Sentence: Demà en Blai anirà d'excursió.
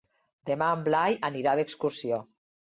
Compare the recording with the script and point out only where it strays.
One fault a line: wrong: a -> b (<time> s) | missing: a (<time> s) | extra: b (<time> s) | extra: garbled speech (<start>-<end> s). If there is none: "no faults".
no faults